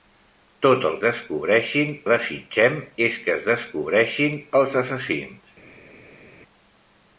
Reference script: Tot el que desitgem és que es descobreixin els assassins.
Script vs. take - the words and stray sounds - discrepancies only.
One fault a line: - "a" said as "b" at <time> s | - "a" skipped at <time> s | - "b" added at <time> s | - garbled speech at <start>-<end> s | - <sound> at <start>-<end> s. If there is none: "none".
- "que" said as "descobreixin" at 1.0 s